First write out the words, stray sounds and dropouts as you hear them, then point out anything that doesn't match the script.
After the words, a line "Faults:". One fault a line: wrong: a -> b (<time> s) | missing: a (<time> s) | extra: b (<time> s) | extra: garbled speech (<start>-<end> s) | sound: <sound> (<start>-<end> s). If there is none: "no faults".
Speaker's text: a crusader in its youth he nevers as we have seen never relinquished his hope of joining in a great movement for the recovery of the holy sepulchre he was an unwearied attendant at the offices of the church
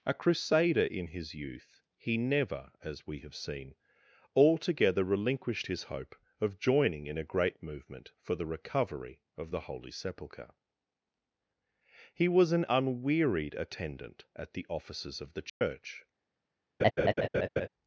a crusader in his youth he never as we have seen altogether relinquished his hope of joining in a great movement for the recovery of the holy sepulchre he was an unwearied attendant at the offices of the church
Faults:
wrong: its -> his (1.1 s)
wrong: nevers -> never (2.2 s)
wrong: never -> altogether (4.3 s)
sound: dropout (15.5-15.6 s)
sound: laugh (16.8-17.7 s)